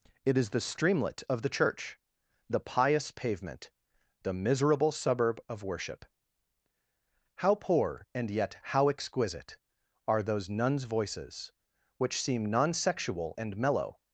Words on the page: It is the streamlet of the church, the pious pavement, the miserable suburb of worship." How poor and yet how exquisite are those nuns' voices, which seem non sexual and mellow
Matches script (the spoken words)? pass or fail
pass